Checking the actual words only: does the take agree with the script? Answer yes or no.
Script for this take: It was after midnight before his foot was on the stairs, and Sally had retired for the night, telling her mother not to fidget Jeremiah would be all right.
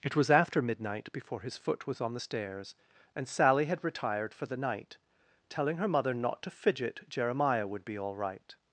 yes